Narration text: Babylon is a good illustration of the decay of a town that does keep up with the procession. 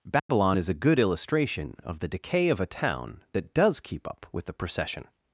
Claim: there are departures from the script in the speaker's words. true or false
false